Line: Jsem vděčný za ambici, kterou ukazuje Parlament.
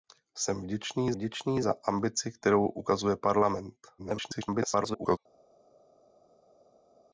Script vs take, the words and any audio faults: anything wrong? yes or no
yes